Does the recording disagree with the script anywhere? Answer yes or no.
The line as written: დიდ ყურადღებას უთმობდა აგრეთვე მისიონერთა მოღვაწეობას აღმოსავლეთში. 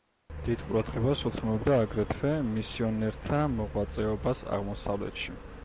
no